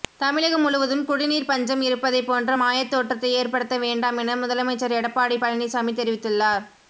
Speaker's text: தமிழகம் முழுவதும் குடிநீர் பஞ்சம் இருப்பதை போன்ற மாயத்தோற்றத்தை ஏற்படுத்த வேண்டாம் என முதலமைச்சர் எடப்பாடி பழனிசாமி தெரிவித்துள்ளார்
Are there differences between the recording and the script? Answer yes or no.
no